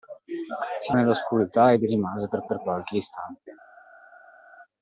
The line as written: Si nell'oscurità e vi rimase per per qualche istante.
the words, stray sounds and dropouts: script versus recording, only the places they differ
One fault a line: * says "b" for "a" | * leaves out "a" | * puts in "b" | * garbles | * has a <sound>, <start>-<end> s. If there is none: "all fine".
all fine